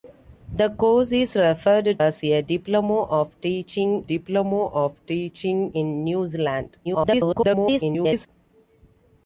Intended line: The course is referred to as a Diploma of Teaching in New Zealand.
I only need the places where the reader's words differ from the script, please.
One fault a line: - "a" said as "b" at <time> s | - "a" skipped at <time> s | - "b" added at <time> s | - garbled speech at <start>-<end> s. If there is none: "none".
- "to" skipped at 2.0 s
- "Diploma of Teaching" added at 4.0 s
- garbled speech at 6.8-8.3 s